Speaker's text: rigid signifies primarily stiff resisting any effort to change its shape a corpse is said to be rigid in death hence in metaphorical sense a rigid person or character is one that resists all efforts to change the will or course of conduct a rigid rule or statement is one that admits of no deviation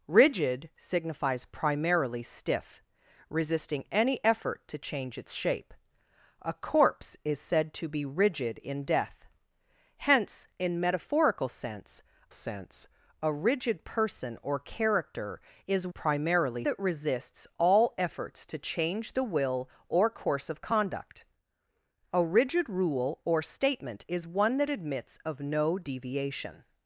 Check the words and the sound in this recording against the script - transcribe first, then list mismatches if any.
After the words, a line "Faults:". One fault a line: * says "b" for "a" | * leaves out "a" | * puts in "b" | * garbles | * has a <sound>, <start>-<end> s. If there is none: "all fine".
rigid signifies primarily stiff resisting any effort to change its shape a corpse is said to be rigid in death hence in metaphorical sense sense a rigid person or character is primarily that resists all efforts to change the will or course of conduct a rigid rule or statement is one that admits of no deviation
Faults:
* puts in "sense"
* says "primarily" for "one"